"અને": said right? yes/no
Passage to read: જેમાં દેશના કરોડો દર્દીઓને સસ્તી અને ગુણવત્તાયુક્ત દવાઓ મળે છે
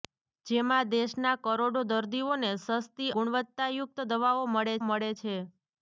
no